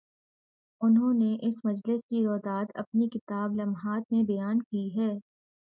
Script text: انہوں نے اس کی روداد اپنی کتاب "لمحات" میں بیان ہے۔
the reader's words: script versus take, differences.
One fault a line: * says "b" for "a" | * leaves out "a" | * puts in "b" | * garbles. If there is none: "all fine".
* puts in "مجلس"
* puts in "کی"